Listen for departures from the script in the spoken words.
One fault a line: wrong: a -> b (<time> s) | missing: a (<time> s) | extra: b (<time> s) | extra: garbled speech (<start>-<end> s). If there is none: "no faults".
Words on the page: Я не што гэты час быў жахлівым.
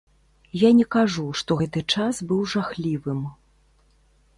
extra: кажу (0.9 s)